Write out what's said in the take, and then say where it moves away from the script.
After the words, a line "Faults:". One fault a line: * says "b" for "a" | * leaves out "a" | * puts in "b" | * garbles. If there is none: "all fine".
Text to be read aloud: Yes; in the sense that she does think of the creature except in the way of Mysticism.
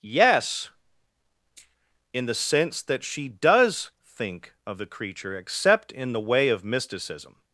Yes; in the sense that she does think of the creature except in the way of Mysticism.
Faults:
all fine